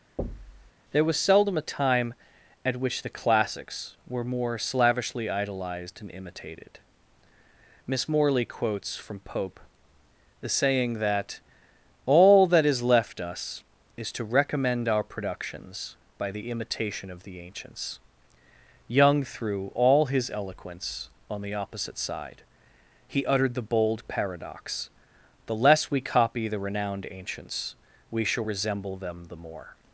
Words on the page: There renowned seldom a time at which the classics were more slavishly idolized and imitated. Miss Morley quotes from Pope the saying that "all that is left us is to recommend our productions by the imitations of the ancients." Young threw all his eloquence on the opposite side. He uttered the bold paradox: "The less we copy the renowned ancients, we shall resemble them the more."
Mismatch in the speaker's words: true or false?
true